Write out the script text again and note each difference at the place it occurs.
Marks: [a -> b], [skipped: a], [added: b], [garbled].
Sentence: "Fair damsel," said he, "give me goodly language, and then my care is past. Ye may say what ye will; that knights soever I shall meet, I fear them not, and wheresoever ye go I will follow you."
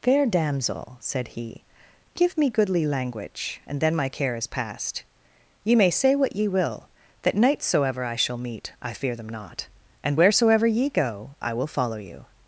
"Fair damsel," said he, "give me goodly language, and then my care is past. Ye may say what ye will; that knights soever I shall meet, I fear them not, and wheresoever ye go I will follow you."